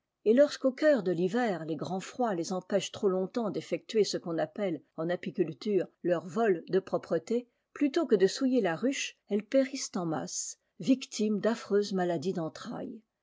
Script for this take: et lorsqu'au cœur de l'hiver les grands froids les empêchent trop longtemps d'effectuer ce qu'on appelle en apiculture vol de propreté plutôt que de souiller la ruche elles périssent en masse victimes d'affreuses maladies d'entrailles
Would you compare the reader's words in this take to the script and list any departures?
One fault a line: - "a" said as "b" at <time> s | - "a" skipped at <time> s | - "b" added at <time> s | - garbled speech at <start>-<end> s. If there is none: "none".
- "leur" added at 6.0 s